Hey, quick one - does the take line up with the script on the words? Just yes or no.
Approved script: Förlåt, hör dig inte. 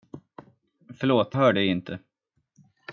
yes